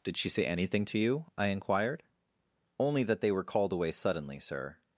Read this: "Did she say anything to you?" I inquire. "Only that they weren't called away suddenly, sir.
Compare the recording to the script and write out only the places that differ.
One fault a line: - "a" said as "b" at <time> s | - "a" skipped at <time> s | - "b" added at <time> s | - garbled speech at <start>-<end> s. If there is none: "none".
- "inquire" said as "inquired" at 1.5 s
- "weren't" said as "were" at 3.3 s